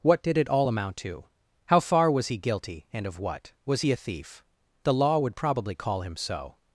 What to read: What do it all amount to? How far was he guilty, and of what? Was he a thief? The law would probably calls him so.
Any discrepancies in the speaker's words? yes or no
yes